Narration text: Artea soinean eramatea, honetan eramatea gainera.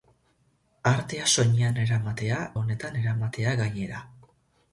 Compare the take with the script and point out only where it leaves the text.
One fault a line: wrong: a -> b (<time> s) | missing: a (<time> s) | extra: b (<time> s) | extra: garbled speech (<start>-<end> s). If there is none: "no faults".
no faults